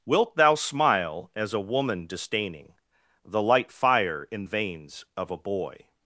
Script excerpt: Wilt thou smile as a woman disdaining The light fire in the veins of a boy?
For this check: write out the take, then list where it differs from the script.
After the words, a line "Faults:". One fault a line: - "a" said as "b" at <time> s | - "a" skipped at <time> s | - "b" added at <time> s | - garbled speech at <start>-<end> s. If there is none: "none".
Wilt thou smile as a woman disdaining The light fire in veins of a boy?
Faults:
- "the" skipped at 4.4 s